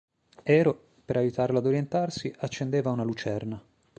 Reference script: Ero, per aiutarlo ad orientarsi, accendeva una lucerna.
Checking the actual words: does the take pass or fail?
pass